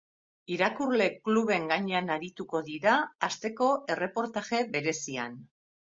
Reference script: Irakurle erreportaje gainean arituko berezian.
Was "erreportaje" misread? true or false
true